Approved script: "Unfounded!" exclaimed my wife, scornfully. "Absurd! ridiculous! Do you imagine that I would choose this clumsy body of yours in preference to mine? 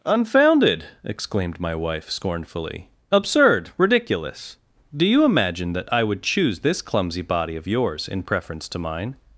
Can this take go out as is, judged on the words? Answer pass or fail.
pass